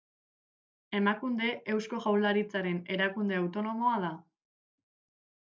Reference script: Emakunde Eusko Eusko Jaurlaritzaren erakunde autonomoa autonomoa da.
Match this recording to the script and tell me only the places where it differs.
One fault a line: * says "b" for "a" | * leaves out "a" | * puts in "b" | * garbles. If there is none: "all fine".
* leaves out "Eusko"
* leaves out "autonomoa"